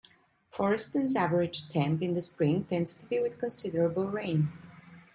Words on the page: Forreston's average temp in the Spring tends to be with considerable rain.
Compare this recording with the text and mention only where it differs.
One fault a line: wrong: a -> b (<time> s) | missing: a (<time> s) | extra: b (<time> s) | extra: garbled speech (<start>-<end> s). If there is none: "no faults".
no faults